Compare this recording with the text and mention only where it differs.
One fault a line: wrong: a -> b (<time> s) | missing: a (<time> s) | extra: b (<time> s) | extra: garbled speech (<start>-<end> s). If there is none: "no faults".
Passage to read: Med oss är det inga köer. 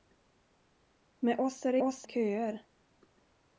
wrong: inga -> oss (1.8 s)